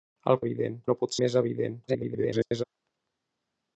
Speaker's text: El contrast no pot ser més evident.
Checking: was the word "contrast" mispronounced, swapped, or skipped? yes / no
yes